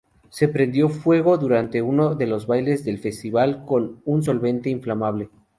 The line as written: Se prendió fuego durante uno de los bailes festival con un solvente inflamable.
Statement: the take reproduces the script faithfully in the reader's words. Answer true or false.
false